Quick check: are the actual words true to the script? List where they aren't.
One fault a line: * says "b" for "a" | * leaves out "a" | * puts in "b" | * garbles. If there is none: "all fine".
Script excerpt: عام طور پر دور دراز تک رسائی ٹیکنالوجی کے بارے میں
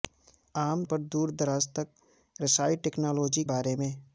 * leaves out "طور"
* leaves out "کے"